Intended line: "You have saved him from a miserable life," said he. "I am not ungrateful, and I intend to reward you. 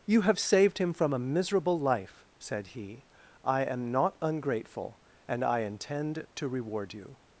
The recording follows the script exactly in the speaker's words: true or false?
true